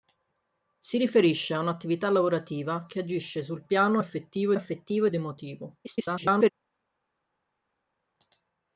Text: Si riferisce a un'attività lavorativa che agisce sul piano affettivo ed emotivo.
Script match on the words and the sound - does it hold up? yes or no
no